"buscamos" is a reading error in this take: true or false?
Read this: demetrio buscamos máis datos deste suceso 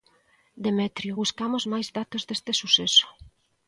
false